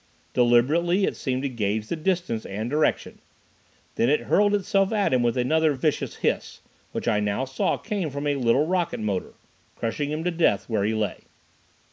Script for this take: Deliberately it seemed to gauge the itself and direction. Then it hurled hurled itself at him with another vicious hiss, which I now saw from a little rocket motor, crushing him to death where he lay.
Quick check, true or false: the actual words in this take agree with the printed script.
false